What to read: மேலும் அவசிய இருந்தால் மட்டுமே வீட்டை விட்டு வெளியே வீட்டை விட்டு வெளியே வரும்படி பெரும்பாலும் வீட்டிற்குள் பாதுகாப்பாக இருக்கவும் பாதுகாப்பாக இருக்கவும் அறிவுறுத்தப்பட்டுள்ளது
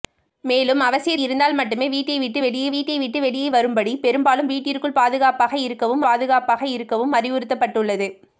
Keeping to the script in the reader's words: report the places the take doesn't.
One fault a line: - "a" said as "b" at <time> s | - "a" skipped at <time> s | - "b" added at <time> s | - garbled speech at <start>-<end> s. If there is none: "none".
none